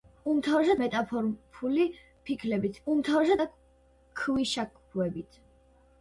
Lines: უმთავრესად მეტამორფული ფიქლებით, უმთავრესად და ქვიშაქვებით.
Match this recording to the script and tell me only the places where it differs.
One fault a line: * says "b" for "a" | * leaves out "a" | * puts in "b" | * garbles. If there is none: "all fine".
all fine